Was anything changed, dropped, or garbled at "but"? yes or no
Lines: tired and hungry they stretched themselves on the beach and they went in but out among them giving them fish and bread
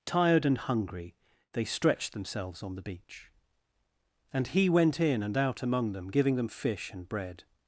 yes